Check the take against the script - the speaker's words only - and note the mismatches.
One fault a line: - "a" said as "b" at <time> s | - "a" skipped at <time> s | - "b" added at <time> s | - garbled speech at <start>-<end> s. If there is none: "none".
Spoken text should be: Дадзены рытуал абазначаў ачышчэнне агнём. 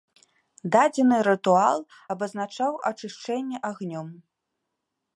none